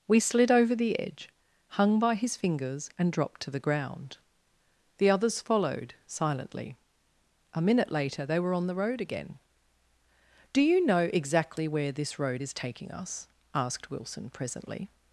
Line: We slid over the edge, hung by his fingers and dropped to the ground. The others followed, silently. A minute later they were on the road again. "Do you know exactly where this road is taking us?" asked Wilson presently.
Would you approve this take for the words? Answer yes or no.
yes